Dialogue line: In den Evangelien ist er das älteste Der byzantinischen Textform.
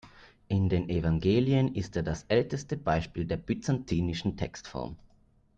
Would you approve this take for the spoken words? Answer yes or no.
no